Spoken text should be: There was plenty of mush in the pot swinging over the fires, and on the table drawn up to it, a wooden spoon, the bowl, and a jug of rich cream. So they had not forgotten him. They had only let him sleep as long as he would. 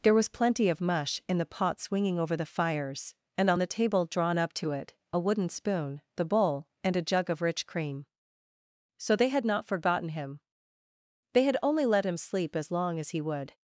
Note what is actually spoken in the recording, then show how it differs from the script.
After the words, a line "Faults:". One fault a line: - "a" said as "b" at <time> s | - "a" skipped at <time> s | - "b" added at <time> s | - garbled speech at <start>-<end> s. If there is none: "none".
There was plenty of mush in the pot swinging over the fires, and on the table drawn up to it, a wooden spoon, the bowl, and a jug of rich cream. So they had not forgotten him. They had only let him sleep as long as he would.
Faults:
none